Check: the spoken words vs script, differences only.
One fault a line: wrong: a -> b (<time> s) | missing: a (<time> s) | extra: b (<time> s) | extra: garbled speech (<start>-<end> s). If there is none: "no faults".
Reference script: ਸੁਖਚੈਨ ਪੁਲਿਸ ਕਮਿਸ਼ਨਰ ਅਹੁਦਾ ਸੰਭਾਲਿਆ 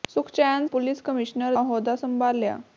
no faults